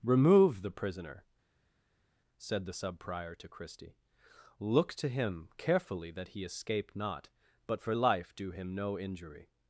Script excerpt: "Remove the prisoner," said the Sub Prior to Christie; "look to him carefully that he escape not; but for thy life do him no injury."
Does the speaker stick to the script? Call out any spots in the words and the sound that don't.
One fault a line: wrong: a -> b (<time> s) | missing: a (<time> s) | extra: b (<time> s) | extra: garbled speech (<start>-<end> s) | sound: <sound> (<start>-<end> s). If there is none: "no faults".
missing: thy (7.9 s)